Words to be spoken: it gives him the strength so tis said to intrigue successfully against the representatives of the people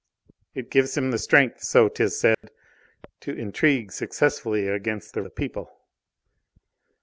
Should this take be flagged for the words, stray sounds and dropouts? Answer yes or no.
yes